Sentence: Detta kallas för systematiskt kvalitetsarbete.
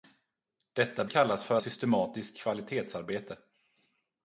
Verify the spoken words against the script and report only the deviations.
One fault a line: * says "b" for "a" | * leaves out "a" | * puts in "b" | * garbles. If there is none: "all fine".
all fine